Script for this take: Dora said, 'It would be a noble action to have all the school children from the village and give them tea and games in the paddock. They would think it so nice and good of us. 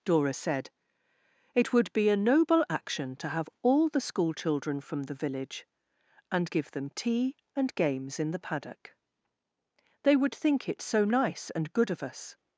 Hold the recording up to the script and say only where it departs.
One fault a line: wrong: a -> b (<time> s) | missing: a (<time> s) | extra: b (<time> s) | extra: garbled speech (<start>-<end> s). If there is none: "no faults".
no faults